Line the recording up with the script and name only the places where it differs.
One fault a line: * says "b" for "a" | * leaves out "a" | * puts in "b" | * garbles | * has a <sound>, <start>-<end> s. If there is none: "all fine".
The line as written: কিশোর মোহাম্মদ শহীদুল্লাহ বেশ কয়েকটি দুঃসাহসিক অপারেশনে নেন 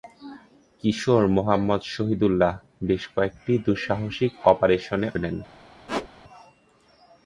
* has a squeak, 5.9-6.1 s